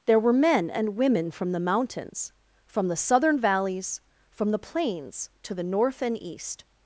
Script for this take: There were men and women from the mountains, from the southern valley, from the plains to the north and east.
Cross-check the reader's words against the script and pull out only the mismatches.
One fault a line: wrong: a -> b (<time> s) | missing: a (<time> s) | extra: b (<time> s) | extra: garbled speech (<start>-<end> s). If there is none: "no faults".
wrong: valley -> valleys (3.4 s)